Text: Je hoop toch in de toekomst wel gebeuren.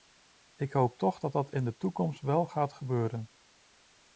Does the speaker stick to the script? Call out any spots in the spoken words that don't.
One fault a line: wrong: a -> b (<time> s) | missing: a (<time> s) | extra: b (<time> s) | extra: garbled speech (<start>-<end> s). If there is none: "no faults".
wrong: Je -> Ik (0.6 s)
extra: dat dat (1.2 s)
extra: gaat (2.5 s)